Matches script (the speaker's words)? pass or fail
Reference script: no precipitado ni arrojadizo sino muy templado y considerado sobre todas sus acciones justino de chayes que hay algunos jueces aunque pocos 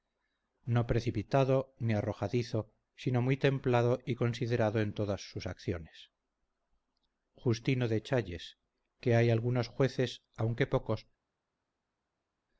fail